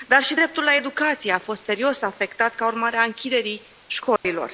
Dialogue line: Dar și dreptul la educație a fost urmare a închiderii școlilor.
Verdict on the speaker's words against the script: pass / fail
fail